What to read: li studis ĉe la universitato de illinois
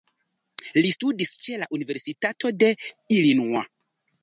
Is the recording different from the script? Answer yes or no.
no